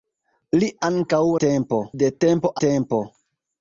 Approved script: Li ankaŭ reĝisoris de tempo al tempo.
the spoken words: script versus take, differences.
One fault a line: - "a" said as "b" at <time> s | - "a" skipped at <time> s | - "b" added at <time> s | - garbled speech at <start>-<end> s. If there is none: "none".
- "reĝisoris" said as "tempo" at 1.5 s
- "al" skipped at 2.6 s